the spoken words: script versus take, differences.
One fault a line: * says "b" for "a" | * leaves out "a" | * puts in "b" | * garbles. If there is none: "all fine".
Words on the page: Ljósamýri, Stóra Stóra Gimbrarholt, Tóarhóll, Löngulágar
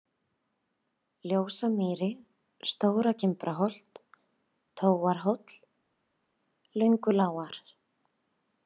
* leaves out "Stóra"